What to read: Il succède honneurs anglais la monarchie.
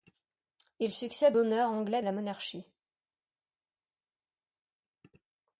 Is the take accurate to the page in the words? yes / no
yes